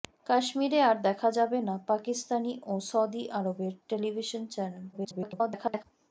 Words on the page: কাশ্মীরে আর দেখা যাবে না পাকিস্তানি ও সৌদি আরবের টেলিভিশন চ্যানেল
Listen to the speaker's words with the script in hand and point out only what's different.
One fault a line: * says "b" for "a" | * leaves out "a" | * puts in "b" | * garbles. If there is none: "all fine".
* garbles